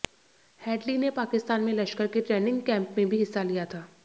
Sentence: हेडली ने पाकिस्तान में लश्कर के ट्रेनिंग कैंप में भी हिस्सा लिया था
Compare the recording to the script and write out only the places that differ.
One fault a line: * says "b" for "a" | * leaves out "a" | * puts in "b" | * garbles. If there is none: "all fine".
all fine